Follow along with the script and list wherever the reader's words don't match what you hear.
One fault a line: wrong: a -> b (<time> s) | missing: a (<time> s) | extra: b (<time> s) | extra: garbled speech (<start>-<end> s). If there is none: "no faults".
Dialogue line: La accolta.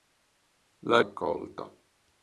no faults